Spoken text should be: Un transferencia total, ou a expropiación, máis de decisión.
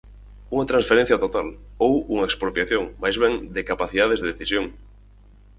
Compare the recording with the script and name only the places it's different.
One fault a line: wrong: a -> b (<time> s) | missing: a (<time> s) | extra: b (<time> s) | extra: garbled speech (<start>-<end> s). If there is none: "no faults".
wrong: Un -> Unha (0.6 s)
wrong: a -> unha (2.1 s)
extra: ben de capacidades (3.2 s)